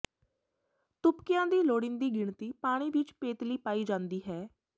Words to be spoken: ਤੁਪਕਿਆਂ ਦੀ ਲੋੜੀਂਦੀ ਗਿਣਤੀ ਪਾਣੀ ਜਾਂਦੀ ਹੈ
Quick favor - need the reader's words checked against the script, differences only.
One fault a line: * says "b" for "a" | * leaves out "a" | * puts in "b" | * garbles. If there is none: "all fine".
* puts in "ਵਿੱਚ ਪੇਤਲੀ ਪਾਈ"